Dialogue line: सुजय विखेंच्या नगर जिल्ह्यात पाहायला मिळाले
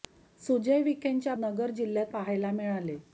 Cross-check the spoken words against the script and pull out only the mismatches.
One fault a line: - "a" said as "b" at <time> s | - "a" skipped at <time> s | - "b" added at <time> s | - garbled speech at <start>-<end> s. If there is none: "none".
none